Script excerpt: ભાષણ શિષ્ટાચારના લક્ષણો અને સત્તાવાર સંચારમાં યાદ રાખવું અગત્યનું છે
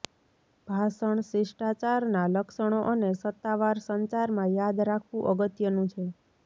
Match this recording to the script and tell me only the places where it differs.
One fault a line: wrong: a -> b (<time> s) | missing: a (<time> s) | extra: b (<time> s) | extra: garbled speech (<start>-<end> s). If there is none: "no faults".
no faults